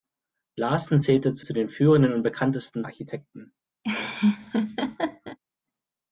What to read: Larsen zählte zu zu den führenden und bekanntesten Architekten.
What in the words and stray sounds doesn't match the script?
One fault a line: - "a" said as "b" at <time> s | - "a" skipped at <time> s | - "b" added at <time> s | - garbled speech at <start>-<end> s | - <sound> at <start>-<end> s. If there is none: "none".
- laugh at 3.8-5.4 s